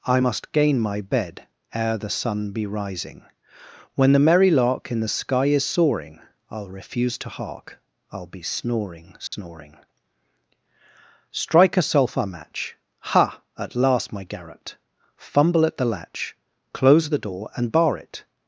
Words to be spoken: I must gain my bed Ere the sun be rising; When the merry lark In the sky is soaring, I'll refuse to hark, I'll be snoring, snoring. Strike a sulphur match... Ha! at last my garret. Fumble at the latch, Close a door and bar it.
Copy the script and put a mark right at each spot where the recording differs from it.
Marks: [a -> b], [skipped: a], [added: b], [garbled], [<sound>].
I must gain my bed Ere the sun be rising; When the merry lark In the sky is soaring, I'll refuse to hark, I'll be snoring, snoring. [dropout] Strike a sulphur match... Ha! at last my garret. Fumble at the latch, Close [a -> the] door and bar it.